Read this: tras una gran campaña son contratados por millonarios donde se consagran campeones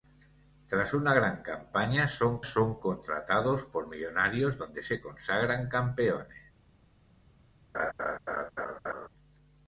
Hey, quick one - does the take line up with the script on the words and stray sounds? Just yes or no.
no